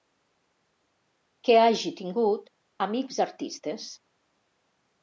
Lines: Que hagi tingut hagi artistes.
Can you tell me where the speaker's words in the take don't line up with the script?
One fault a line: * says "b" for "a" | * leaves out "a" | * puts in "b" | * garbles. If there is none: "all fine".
* says "amics" for "hagi"